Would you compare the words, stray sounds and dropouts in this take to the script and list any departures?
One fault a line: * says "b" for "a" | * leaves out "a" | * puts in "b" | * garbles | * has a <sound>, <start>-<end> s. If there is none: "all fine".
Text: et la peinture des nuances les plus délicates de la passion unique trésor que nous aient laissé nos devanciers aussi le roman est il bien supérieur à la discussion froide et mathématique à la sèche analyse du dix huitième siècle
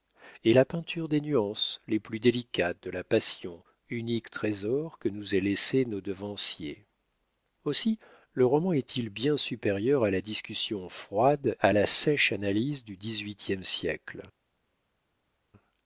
* leaves out "et mathématique"